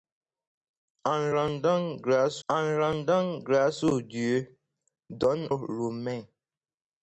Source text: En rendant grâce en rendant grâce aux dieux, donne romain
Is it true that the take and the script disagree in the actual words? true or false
false